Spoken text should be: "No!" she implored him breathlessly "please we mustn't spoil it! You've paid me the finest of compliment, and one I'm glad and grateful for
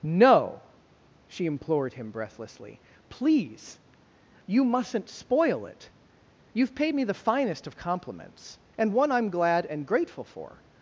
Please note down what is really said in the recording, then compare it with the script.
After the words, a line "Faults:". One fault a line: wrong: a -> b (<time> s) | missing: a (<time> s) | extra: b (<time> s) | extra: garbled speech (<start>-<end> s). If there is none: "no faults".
"No!" she implored him breathlessly "please you mustn't spoil it! You've paid me the finest of compliments, and one I'm glad and grateful for
Faults:
wrong: we -> you (4.5 s)
wrong: compliment -> compliments (7.8 s)